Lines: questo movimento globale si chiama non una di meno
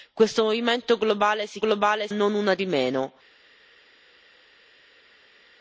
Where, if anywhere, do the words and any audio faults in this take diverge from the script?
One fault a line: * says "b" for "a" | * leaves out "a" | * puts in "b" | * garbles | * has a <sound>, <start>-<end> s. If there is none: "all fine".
* says "globale" for "chiama"